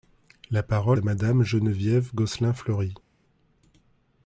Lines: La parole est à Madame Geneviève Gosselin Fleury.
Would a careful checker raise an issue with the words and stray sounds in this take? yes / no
yes